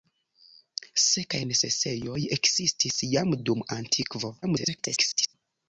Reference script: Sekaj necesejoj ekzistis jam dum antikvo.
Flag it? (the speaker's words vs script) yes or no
yes